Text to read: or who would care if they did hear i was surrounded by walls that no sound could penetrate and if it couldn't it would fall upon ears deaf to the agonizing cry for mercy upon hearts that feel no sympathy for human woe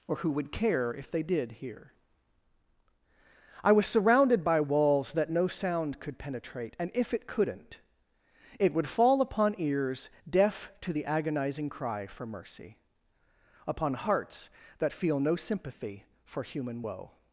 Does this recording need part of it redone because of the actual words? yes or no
no